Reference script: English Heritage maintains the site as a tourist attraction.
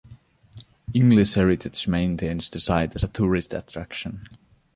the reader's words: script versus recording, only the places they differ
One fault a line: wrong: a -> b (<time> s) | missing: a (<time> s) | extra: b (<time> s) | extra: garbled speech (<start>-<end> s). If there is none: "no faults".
no faults